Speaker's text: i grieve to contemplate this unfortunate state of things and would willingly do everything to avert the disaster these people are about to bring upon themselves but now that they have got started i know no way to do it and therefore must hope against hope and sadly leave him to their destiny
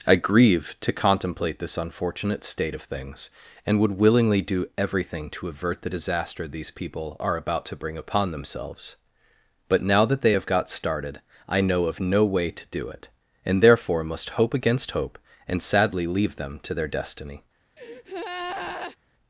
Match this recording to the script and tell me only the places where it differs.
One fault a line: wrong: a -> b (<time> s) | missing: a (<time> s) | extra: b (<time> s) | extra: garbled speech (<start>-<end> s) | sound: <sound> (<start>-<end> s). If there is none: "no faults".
extra: of (11.8 s)
wrong: him -> them (16.4 s)
sound: breath (17.8-19.0 s)